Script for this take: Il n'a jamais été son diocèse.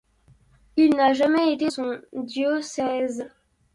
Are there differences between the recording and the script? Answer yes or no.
no